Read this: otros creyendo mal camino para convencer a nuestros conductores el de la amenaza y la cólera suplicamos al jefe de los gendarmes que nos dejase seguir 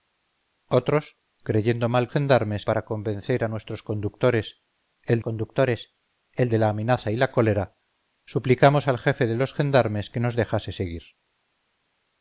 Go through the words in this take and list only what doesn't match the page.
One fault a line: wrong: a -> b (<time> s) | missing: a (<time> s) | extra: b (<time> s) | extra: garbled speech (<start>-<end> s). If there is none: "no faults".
wrong: camino -> gendarmes (2.1 s)
extra: conductores el (5.2 s)